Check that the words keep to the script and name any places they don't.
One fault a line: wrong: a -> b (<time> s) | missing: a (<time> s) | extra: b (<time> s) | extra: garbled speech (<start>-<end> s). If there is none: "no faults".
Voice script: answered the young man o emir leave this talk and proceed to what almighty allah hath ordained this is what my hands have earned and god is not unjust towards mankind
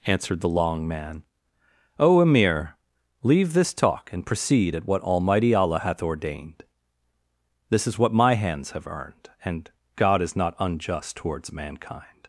wrong: young -> long (0.5 s)
wrong: to -> at (4.7 s)